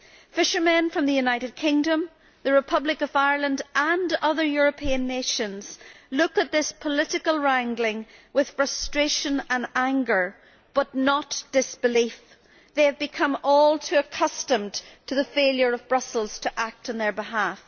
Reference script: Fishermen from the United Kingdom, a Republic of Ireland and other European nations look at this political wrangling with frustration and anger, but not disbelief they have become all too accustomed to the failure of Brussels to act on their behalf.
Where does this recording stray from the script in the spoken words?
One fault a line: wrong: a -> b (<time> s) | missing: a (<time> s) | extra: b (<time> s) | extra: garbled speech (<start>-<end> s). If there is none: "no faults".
wrong: a -> the (2.4 s)